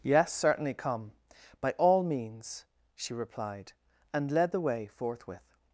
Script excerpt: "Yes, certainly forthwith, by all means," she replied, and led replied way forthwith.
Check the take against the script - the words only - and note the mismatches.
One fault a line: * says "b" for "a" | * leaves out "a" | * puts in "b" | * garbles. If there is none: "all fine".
* says "come" for "forthwith"
* says "the" for "replied"